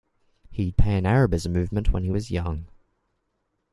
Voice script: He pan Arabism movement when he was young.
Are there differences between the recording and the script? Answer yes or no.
no